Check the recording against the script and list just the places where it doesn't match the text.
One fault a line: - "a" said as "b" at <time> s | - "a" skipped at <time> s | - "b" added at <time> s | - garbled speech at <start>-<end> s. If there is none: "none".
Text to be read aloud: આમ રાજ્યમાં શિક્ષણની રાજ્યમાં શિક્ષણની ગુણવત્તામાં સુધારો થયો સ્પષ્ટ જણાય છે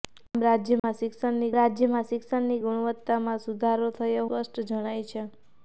none